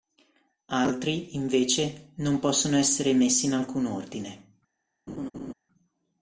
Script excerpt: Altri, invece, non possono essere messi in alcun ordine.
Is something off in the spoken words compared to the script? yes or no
no